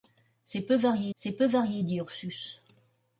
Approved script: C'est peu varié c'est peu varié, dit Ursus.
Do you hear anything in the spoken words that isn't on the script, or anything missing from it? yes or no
no